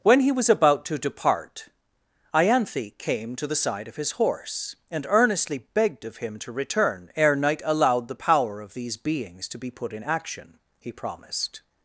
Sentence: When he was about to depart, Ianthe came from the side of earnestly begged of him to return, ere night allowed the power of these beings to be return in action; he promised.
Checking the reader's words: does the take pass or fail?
fail